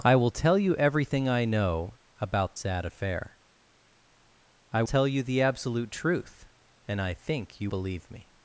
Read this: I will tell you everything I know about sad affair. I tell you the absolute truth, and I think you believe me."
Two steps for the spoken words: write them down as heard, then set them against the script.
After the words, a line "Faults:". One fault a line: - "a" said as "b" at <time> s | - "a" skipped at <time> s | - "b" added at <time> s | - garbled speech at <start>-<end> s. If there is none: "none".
I will tell you everything I know about sad affair. I tell you the absolute truth, and I think you believe me."
Faults:
none